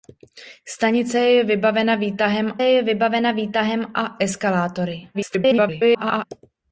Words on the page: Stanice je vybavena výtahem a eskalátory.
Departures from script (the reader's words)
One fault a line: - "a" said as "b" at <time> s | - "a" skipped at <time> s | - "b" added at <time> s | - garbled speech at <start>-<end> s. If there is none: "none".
- "je vybavena výtahem" added at 2.6 s
- garbled speech at 5.1-6.3 s